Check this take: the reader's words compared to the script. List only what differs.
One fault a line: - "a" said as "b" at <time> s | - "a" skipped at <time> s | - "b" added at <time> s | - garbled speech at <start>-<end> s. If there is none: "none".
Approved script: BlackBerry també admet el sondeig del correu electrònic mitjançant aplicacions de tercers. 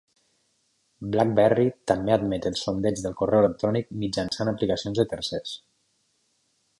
none